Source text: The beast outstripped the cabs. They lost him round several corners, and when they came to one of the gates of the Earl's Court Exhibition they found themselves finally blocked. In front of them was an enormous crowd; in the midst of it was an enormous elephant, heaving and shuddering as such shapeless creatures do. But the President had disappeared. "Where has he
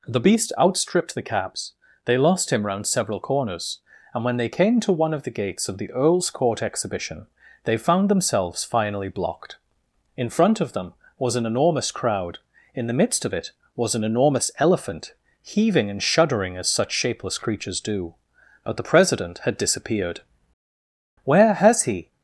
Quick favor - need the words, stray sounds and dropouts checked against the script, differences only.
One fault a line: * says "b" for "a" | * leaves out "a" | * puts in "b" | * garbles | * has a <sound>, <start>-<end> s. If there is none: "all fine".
all fine